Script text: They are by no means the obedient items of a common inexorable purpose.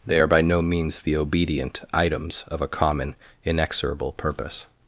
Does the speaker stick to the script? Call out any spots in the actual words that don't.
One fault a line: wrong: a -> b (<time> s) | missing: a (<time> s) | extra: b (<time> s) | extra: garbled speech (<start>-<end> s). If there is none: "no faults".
no faults